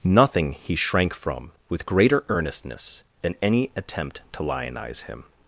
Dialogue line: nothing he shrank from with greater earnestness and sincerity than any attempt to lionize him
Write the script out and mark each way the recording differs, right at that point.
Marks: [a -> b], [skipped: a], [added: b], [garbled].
nothing he shrank from with greater earnestness [skipped: and sincerity] than any attempt to lionize him